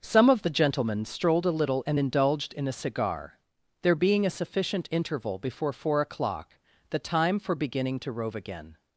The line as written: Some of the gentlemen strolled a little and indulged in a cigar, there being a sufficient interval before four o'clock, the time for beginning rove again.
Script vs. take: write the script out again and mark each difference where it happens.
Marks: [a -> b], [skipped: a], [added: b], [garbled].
Some of the gentlemen strolled a little and indulged in a cigar, there being a sufficient interval before four o'clock, the time for beginning [added: to] rove again.